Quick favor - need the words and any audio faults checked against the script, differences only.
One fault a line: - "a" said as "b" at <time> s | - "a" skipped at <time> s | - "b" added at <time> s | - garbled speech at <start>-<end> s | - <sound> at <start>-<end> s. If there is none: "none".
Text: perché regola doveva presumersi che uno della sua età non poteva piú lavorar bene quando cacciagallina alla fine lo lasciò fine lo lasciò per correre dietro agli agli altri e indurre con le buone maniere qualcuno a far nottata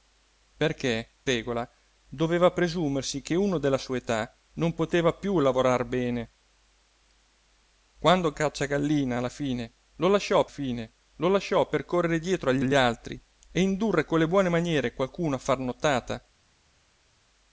none